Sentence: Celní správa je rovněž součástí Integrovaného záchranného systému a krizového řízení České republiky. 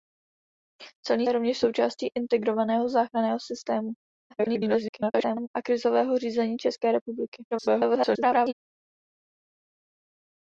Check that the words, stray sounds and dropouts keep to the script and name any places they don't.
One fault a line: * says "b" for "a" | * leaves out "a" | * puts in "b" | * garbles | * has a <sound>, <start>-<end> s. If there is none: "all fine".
* leaves out "správa"
* garbles
* garbles